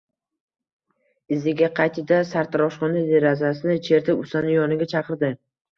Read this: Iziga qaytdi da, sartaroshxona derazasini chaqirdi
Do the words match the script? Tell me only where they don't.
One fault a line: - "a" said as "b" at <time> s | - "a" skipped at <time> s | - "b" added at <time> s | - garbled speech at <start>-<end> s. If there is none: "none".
- "chertib ustani yoniga" added at 3.9 s